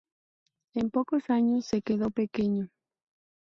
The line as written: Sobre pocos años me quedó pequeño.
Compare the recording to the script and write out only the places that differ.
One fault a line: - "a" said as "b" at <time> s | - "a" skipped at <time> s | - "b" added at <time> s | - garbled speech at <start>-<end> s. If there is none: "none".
- "Sobre" said as "En" at 0.7 s
- "me" said as "se" at 1.7 s